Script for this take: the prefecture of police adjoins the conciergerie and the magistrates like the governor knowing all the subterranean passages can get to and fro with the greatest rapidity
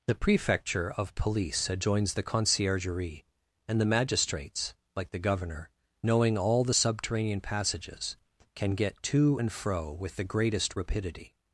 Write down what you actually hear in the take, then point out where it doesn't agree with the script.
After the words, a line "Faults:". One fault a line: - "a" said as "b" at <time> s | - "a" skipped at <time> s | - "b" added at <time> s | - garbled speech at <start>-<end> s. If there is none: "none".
the prefecture of police adjoins the conciergerie and the magistrates like the governor knowing all the subterranean passages can get to and fro with the greatest rapidity
Faults:
none